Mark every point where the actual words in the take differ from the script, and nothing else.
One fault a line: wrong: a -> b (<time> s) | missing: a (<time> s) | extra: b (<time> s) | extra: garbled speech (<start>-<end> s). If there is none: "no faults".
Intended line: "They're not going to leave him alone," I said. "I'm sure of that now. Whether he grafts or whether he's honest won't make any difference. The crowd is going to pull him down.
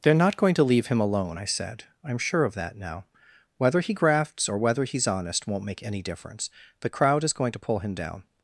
no faults